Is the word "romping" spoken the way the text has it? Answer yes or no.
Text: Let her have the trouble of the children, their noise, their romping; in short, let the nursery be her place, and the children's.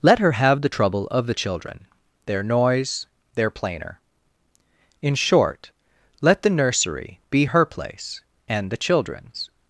no